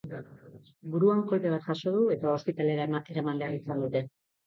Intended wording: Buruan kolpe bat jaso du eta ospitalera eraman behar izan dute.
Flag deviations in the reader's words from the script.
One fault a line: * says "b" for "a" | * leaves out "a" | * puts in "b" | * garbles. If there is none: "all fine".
all fine